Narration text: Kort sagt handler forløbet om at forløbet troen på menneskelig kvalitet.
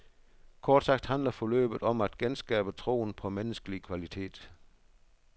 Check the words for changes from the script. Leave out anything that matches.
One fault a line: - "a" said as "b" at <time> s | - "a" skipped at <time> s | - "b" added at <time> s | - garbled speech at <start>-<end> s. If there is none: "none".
- "forløbet" said as "genskabe" at 2.2 s